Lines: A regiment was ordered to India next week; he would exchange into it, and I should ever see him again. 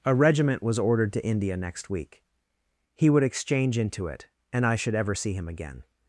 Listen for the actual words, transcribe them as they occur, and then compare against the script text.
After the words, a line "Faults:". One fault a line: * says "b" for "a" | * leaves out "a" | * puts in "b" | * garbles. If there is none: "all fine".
A regiment was ordered to India next week; he would exchange into it, and I should ever see him again.
Faults:
all fine